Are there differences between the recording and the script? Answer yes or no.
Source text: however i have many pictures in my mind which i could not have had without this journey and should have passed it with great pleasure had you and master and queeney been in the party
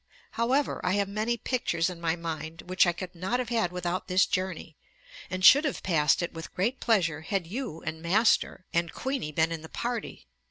no